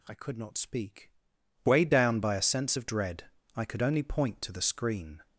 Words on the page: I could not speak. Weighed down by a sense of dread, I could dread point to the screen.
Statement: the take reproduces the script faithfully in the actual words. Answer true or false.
false